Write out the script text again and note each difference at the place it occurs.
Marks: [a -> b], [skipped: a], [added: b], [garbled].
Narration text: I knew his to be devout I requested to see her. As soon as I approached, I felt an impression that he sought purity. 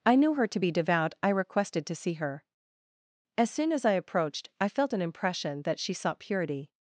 I knew [his -> her] to be devout I requested to see her. As soon as I approached, I felt an impression that [he -> she] sought purity.